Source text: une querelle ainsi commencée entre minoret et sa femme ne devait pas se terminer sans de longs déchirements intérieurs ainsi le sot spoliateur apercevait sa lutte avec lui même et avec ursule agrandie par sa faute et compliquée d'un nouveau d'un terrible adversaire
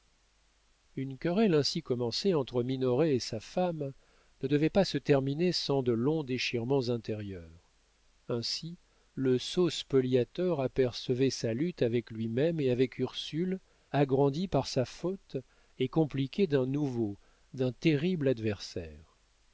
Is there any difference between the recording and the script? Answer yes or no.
no